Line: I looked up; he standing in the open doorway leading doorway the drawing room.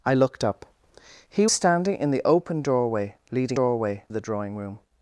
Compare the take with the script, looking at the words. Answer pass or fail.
pass